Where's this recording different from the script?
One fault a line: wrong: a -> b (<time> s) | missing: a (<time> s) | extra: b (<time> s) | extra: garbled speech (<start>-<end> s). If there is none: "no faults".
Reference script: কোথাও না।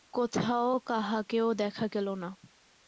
extra: কাহাকেও দেখা গেল (0.8 s)